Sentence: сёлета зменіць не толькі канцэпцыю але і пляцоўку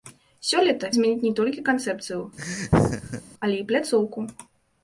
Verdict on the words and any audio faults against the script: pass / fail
fail